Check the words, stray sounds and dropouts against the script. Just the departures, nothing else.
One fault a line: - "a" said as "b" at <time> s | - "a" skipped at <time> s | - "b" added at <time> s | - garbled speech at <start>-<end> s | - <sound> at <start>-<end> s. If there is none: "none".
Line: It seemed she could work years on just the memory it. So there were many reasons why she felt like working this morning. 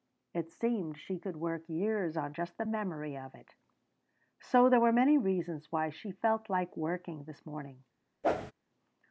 - "of" added at 3.2 s
- whoosh at 8.2-8.5 s